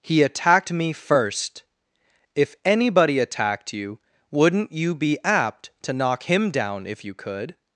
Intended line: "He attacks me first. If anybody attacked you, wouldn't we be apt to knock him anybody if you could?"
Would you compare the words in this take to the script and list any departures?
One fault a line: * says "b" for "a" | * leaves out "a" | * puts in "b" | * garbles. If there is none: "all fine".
* says "attacked" for "attacks"
* says "you" for "we"
* says "down" for "anybody"